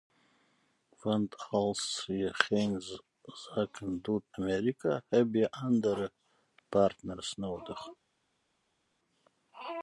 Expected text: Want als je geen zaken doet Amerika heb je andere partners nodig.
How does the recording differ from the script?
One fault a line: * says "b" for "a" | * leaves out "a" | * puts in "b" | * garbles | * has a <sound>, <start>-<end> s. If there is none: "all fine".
all fine